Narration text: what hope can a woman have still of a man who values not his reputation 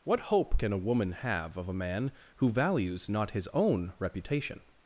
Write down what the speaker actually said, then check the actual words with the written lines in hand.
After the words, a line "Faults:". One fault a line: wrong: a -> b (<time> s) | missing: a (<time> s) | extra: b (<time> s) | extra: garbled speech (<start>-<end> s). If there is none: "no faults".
what hope can a woman have of a man who values not his own reputation
Faults:
missing: still (1.6 s)
extra: own (3.5 s)